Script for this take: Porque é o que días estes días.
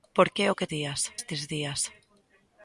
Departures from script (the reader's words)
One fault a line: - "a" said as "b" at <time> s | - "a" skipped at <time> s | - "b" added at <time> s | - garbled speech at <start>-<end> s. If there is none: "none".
none